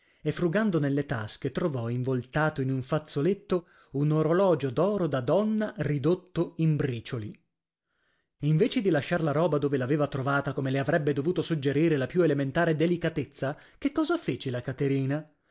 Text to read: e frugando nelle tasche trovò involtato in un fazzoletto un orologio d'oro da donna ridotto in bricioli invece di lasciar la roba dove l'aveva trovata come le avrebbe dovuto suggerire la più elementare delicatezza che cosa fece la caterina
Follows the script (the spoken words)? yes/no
yes